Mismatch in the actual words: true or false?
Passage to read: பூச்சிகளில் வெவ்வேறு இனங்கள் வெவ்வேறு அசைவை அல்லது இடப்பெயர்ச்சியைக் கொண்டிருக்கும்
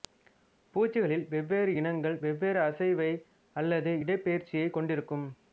false